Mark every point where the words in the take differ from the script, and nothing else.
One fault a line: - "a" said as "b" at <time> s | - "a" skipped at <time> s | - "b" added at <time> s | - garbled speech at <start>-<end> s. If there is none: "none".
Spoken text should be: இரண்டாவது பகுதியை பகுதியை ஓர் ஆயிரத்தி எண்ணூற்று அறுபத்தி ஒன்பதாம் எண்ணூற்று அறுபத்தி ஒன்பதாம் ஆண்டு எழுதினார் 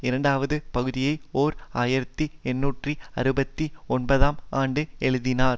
- "பகுதியை" skipped at 1.1 s
- "எண்ணூற்று அறுபத்தி ஒன்பதாம்" skipped at 4.4 s